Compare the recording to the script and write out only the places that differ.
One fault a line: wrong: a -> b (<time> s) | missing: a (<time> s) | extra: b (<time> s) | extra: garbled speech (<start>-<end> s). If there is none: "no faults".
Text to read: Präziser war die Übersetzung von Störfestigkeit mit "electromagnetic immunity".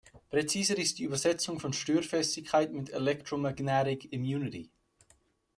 wrong: war -> ist (0.8 s)